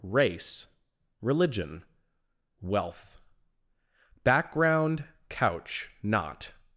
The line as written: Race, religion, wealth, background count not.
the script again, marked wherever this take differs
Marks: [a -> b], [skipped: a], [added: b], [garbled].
Race, religion, wealth, background [count -> couch] not.